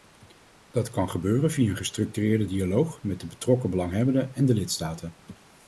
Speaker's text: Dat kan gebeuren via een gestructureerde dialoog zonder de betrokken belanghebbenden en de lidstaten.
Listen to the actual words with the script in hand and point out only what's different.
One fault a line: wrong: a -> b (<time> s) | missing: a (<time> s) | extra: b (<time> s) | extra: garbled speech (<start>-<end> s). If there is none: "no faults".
wrong: zonder -> met (3.0 s)